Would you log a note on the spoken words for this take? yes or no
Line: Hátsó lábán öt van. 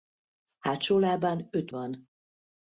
no